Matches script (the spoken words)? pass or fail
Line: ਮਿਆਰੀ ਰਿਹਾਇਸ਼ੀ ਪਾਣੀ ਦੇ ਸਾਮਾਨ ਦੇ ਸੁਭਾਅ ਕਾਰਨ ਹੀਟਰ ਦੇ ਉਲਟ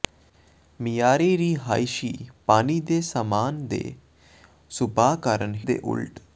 fail